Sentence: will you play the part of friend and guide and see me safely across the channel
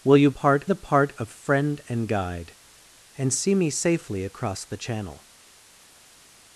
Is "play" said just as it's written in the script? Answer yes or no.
no